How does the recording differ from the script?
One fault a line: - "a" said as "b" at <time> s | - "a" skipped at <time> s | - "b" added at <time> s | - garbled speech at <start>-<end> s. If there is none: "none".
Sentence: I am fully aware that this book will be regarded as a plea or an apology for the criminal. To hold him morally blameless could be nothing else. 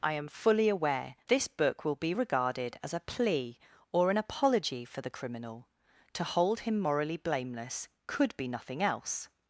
- "that" skipped at 1.1 s